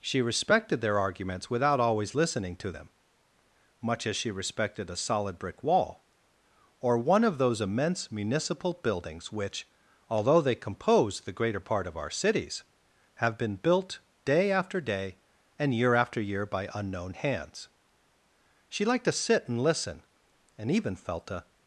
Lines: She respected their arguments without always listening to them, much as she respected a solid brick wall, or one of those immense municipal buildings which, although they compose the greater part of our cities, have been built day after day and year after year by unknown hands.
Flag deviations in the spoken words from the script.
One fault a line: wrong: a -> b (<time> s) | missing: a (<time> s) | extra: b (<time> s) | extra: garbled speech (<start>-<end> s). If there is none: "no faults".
extra: She liked to sit and listen and even felt a (18.7 s)